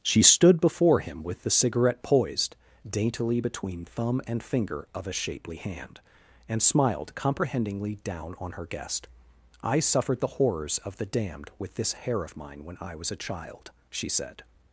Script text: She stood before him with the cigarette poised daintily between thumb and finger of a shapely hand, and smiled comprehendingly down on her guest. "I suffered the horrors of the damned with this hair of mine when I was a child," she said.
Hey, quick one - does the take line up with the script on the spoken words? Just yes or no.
yes